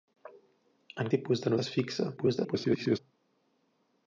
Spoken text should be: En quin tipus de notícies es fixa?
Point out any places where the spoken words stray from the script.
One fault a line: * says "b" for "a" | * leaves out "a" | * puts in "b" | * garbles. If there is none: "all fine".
* leaves out "quin"
* leaves out "notícies"
* garbles